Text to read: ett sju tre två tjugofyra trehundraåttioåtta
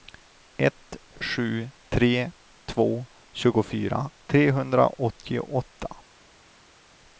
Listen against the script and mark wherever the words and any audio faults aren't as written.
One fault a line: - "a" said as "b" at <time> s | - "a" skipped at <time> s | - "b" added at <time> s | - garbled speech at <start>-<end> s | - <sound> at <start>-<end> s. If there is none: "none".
none